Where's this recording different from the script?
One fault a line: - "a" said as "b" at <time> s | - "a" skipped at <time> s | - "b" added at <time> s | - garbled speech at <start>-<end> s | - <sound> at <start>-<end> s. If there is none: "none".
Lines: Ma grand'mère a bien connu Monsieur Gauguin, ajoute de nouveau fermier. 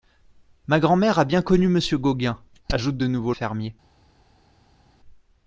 none